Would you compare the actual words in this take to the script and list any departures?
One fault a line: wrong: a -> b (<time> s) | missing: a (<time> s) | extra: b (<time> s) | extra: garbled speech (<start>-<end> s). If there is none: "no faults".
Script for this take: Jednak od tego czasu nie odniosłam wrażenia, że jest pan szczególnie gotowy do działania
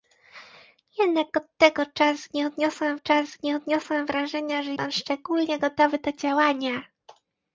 extra: czasu nie odniosłam (2.9 s)
missing: jest (4.7 s)